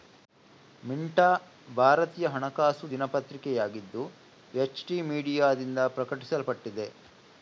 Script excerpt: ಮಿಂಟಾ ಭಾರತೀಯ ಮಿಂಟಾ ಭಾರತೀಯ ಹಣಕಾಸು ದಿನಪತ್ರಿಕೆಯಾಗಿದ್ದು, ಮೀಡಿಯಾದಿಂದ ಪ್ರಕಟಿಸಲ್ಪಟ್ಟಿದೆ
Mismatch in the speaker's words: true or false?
true